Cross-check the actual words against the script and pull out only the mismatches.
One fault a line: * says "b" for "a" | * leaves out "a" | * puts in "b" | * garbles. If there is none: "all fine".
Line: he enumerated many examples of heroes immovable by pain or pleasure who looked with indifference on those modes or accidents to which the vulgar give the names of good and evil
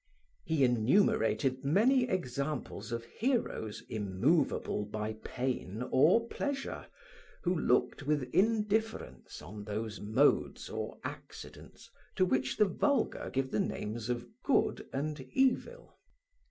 all fine